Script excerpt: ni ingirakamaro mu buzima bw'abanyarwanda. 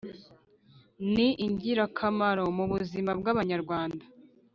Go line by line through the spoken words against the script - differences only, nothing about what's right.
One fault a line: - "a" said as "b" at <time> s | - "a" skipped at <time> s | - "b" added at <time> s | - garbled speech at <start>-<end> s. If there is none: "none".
none